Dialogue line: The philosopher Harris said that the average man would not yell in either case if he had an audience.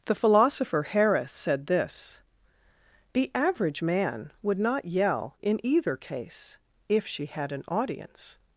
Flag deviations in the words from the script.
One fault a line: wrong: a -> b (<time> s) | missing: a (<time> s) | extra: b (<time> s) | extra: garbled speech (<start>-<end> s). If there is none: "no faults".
wrong: that -> this (1.7 s)
wrong: he -> she (7.1 s)